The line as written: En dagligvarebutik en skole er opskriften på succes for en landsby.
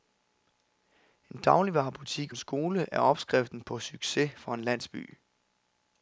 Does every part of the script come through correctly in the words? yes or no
yes